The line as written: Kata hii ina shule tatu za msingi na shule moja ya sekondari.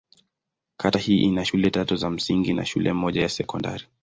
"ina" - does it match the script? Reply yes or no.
yes